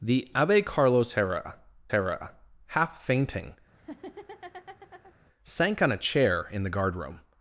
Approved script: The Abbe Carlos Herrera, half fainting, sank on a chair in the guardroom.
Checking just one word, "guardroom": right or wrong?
right